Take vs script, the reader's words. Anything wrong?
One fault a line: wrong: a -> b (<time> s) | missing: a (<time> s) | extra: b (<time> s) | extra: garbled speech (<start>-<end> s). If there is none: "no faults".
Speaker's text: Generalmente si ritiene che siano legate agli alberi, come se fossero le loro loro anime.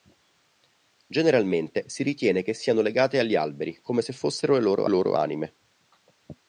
no faults